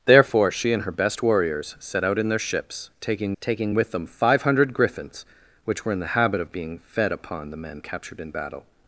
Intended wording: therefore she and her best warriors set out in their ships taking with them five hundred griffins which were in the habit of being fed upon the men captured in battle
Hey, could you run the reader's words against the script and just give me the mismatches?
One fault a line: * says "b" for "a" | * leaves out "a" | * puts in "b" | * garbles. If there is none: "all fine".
* puts in "taking"